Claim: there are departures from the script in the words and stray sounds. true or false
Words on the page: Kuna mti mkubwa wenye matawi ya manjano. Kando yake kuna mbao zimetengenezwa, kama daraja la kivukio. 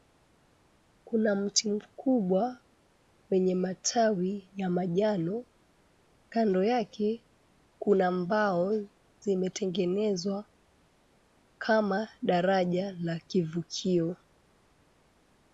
false